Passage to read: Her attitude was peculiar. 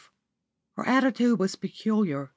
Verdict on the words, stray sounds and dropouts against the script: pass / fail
pass